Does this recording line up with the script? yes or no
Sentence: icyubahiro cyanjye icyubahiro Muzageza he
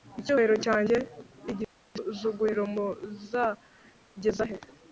no